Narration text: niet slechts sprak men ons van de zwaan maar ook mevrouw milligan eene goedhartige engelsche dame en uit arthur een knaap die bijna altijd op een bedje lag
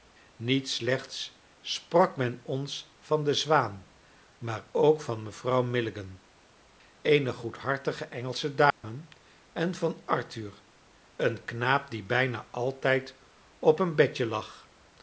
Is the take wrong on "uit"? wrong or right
wrong